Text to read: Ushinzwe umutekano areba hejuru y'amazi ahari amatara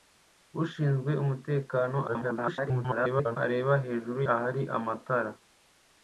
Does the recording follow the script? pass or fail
fail